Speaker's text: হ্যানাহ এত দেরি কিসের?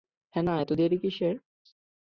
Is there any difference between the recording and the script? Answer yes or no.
no